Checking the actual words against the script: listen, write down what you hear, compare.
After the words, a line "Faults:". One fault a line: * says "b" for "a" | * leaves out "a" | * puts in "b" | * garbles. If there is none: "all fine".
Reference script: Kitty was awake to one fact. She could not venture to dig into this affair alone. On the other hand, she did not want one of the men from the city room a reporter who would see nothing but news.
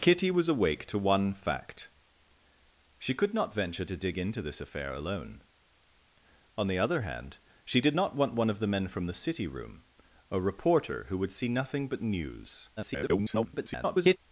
Kitty was awake to one fact. She could not venture to dig into this affair alone. On the other hand, she did not want one of the men from the city room a reporter who would see nothing but news. [garbled]
Faults:
* garbles